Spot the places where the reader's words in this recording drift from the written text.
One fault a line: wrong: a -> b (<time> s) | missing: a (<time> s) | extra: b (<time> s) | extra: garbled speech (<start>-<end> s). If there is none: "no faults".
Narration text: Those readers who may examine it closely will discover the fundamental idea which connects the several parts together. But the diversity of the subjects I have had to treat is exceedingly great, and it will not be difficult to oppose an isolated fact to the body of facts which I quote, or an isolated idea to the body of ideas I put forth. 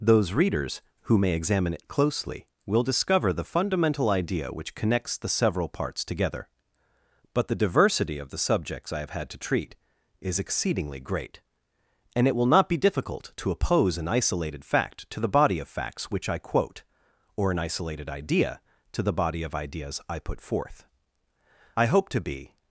extra: I hope to be (21.8 s)